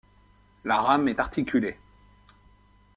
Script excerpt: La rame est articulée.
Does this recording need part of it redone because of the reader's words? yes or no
no